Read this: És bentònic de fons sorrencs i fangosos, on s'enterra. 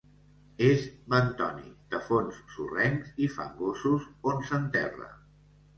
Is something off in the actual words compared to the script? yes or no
no